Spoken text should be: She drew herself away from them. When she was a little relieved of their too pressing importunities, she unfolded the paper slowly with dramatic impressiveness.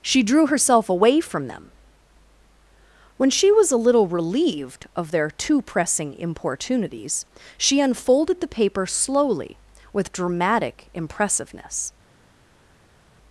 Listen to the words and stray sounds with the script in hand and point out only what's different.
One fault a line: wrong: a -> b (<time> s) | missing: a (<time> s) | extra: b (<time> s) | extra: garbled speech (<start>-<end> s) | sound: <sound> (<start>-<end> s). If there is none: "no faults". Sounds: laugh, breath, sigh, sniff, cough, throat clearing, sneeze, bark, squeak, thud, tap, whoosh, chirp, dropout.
no faults